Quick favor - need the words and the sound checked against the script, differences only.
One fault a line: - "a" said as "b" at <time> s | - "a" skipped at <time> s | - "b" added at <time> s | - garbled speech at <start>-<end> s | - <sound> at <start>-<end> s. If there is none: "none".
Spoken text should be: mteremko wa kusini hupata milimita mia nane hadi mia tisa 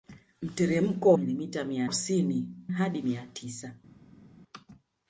- "wa kusini hupata" skipped at 1.1 s
- "nane" said as "kusini" at 1.8 s